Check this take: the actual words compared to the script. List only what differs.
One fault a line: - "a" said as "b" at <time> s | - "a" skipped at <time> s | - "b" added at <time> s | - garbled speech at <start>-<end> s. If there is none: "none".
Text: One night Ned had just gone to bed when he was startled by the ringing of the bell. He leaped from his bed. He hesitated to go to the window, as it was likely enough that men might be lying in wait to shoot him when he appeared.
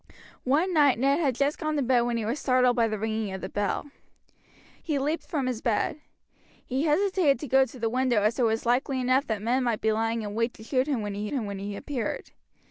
- "him when he" added at 11.3 s